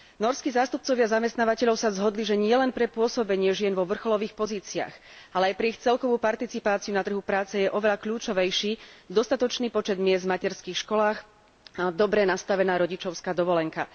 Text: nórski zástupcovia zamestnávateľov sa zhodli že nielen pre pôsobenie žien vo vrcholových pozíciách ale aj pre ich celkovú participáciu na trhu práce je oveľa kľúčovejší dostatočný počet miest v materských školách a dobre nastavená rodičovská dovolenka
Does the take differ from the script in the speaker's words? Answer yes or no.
no